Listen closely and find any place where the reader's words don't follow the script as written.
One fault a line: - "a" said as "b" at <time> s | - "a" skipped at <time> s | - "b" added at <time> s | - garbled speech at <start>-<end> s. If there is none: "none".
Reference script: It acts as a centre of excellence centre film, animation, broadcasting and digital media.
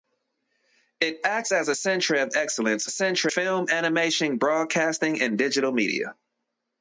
none